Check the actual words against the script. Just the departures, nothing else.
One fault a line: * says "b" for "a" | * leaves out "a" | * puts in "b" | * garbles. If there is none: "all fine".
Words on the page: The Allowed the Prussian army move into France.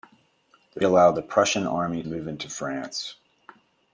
all fine